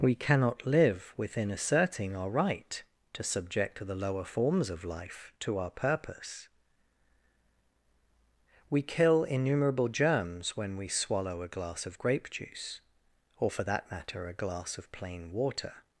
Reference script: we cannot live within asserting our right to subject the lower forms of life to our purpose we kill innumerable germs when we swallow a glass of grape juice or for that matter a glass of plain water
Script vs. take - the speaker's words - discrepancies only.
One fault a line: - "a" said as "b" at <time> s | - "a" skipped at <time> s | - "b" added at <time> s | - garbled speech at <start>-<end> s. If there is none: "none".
none